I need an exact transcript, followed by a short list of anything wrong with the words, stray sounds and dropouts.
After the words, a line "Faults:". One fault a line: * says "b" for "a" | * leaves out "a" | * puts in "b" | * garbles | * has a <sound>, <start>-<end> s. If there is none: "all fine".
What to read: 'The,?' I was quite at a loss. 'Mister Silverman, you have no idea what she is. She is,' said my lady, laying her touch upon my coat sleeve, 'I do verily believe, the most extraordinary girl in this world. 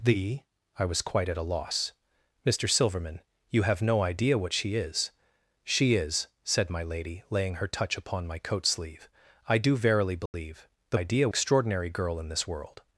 'The,?' I was quite at a loss. 'Mister Silverman, you have no idea what she is. She is,' said my lady, laying her touch upon my coat sleeve, 'I do verily believe, the idea extraordinary girl in this world.
Faults:
* has a dropout, 10.3-10.3 s
* says "idea" for "most"